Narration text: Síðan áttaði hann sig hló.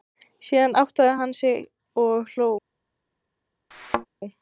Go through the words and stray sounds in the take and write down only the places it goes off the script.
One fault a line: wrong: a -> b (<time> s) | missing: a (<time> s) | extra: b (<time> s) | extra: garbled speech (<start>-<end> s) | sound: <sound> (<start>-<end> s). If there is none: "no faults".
extra: og (2.1 s)
sound: thud (3.7-4.1 s)